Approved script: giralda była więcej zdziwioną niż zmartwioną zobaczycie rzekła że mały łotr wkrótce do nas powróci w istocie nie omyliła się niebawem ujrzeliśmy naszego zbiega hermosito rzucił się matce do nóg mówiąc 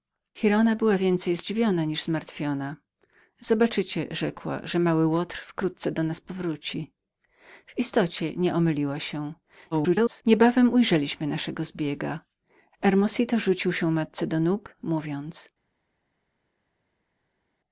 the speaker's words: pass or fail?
fail